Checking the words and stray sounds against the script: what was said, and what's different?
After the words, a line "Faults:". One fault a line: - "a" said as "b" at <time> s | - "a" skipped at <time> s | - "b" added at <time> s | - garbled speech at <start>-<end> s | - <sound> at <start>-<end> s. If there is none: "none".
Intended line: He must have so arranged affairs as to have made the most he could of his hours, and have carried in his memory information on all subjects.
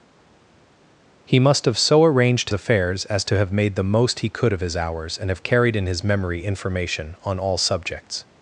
He must have so arranged affairs as to have made the most he could of his hours, and have carried in his memory information on all subjects.
Faults:
none